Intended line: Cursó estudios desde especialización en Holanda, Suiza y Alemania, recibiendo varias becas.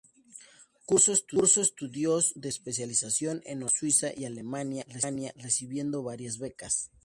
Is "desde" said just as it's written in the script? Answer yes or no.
no